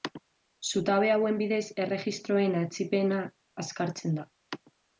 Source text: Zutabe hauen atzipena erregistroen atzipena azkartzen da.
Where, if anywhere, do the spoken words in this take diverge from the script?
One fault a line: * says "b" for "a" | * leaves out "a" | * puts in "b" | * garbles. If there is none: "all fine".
* says "bidez" for "atzipena"